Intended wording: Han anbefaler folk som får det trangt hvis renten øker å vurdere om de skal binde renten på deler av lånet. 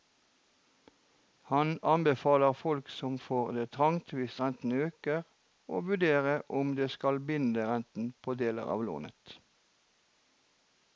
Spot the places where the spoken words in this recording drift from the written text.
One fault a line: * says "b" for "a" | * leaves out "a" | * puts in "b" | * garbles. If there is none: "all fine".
all fine